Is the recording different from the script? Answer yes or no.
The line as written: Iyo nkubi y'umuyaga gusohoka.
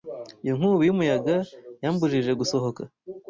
yes